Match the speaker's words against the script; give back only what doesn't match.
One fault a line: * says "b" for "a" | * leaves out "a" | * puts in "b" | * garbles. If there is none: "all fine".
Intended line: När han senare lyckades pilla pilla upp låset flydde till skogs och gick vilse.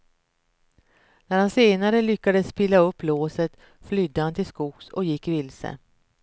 * leaves out "pilla"
* puts in "han"